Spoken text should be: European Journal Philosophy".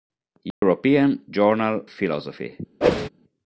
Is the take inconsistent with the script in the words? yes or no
no